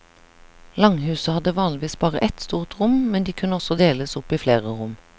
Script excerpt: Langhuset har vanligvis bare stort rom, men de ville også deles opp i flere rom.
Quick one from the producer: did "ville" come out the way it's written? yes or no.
no